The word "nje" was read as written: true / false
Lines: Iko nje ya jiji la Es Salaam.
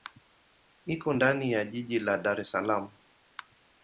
false